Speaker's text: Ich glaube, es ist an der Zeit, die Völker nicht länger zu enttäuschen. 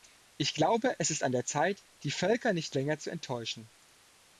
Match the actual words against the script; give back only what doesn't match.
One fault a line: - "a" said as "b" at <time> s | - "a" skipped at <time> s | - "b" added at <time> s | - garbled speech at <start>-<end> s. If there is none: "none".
none